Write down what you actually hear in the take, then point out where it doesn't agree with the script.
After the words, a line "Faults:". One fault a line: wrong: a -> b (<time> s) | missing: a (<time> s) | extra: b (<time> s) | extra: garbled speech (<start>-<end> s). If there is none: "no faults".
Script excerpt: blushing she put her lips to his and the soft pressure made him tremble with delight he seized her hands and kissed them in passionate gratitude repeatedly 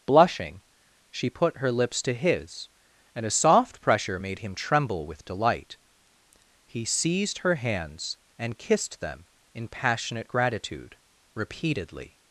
blushing she put her lips to his and a soft pressure made him tremble with delight he seized her hands and kissed them in passionate gratitude repeatedly
Faults:
wrong: the -> a (3.2 s)